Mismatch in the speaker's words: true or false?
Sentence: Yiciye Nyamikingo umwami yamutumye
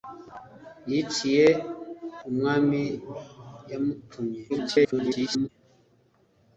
true